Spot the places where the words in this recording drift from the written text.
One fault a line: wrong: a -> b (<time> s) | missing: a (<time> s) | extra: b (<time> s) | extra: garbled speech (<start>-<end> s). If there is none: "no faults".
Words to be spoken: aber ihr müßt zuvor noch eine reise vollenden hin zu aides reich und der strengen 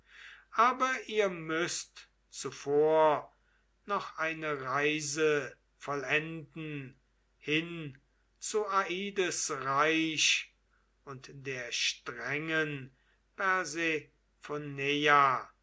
no faults